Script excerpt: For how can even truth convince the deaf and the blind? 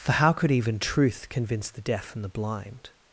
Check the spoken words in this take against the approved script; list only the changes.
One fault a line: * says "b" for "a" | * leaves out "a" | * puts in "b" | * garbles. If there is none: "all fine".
* says "could" for "can"